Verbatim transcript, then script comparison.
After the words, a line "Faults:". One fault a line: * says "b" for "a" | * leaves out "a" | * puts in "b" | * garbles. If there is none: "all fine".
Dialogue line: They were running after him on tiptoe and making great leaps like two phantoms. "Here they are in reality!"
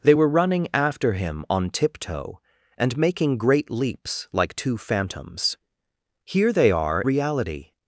They were running after him on tiptoe and making great leaps like two phantoms. "Here they are reality!"
Faults:
* leaves out "in"